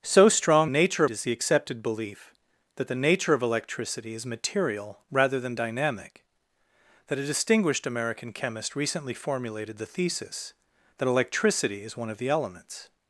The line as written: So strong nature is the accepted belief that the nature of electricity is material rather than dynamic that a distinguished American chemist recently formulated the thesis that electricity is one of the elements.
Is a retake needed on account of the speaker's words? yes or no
no